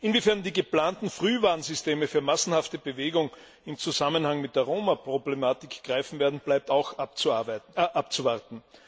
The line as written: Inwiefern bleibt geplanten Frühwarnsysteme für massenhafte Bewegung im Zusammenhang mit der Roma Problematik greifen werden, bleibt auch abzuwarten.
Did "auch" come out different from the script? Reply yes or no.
no